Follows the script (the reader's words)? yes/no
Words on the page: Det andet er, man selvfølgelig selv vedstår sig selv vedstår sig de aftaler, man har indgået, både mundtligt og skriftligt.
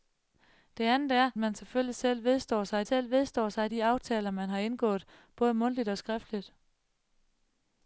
yes